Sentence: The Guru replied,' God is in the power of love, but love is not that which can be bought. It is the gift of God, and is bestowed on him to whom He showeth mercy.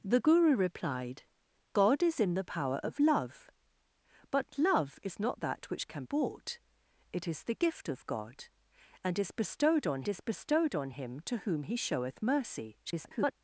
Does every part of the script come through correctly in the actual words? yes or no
no